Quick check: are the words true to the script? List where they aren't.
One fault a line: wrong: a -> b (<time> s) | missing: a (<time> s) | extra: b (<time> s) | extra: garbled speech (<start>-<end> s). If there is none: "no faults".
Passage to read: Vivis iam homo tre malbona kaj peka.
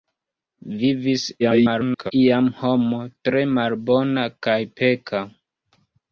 extra: garbled speech (1.4-2.1 s)